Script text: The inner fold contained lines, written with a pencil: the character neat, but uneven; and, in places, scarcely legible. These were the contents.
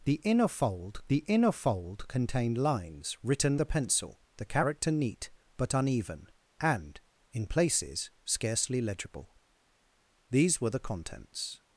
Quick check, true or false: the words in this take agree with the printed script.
false